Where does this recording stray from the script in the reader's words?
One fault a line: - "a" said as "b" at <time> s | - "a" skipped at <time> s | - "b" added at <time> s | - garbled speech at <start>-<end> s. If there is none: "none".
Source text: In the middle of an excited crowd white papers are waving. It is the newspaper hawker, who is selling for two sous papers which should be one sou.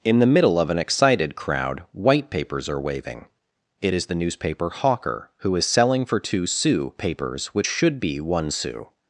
none